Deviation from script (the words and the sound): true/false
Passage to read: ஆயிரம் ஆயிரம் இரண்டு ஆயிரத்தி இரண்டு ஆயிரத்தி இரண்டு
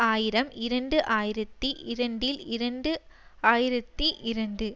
true